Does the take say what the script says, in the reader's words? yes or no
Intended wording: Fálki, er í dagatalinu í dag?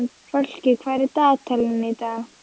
no